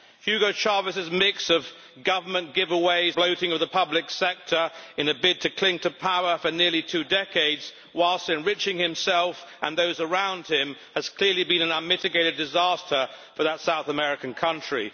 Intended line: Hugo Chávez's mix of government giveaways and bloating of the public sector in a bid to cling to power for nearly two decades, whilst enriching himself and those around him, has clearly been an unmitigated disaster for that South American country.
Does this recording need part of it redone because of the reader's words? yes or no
yes